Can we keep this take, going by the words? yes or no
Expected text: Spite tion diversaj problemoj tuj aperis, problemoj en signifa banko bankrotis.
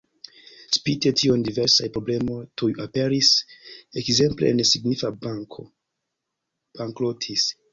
no